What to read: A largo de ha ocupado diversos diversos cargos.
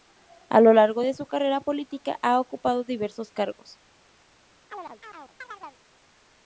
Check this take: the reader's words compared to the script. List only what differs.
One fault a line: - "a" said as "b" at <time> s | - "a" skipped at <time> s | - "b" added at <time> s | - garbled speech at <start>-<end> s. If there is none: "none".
- "lo" added at 0.6 s
- "su carrera política" added at 1.1 s
- "diversos" skipped at 3.3 s